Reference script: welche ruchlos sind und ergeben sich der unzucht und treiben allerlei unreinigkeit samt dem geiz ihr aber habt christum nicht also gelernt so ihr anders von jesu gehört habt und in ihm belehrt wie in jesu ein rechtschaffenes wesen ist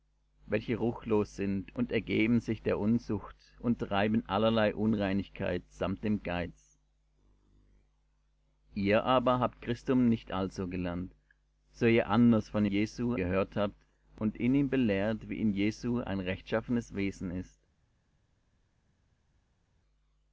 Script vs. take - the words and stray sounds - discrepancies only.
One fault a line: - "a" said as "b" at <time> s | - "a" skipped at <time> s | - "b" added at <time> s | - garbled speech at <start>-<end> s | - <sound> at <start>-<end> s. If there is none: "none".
none